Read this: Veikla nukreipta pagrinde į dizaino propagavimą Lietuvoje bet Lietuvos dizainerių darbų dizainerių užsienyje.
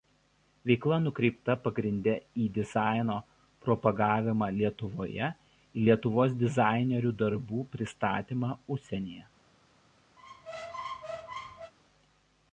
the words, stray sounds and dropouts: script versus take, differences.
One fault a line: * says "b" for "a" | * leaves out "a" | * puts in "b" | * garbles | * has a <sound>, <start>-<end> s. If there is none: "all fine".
* says "ir" for "bet"
* says "pristatymą" for "dizainerių"
* has a squeak, 10.2-11.7 s